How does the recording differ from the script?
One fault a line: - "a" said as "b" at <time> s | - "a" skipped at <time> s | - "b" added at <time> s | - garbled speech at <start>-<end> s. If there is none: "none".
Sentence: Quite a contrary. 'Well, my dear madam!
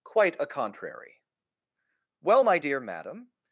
none